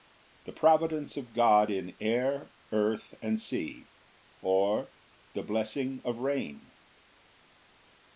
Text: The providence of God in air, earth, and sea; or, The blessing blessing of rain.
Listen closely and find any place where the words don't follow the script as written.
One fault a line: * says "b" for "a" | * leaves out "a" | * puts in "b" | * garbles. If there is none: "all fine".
* leaves out "blessing"